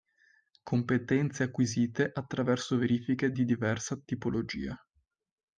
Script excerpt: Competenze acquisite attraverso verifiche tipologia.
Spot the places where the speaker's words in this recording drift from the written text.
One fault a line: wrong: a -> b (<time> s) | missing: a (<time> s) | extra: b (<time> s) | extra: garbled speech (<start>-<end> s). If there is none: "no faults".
extra: di diversa (3.3 s)